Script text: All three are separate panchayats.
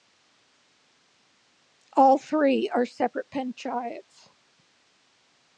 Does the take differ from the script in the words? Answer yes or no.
no